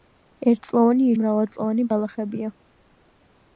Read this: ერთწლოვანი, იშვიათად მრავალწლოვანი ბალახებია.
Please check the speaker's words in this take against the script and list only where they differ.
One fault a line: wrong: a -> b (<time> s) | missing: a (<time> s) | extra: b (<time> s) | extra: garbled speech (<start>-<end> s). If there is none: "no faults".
missing: იშვიათად (1.1 s)